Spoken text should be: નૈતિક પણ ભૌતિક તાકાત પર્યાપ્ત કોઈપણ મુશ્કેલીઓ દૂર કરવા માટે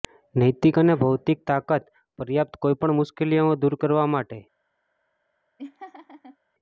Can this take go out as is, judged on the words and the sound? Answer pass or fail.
fail